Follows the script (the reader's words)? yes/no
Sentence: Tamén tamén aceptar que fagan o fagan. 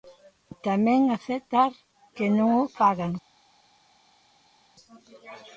no